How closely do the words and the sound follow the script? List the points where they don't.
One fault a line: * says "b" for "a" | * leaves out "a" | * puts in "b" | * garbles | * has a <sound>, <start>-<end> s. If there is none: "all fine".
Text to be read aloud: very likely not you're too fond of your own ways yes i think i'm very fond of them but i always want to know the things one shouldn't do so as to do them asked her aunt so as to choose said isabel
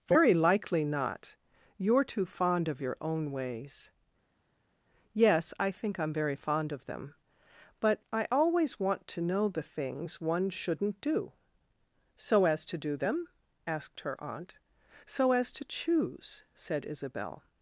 all fine